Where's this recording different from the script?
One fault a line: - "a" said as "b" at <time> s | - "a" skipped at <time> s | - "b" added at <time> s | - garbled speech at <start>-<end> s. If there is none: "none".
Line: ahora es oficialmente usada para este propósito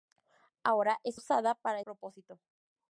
- "oficialmente" skipped at 1.2 s
- "este" skipped at 1.8 s